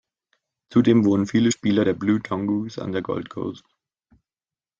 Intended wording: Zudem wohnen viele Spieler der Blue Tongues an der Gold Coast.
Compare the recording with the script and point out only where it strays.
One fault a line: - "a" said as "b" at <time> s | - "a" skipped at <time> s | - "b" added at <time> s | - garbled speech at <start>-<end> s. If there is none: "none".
none